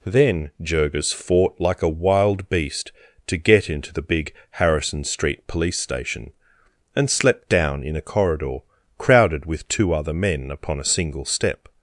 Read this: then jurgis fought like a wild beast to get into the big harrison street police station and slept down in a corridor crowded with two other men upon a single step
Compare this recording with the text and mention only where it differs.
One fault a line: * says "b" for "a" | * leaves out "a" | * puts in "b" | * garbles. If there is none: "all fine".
all fine